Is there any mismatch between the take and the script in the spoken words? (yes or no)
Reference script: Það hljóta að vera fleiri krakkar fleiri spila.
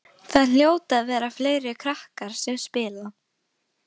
yes